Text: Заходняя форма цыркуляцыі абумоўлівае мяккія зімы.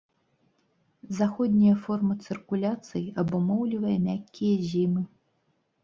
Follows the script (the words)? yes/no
yes